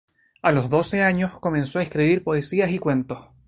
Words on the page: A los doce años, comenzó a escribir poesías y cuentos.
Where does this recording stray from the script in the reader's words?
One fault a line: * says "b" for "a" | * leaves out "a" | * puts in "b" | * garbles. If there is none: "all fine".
all fine